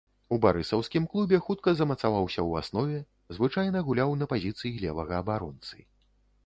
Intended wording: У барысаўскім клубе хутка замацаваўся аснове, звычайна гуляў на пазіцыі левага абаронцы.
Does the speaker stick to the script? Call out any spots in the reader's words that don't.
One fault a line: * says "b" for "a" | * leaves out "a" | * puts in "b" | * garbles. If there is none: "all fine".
* puts in "ў"